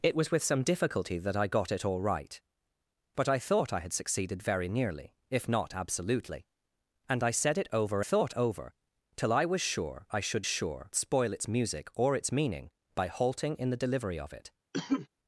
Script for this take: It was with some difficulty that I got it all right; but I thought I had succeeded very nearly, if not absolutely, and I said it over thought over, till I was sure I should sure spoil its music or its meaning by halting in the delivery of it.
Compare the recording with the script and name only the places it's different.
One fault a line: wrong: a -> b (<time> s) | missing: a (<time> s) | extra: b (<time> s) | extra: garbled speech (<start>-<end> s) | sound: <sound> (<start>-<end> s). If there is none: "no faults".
sound: cough (14.7-15.1 s)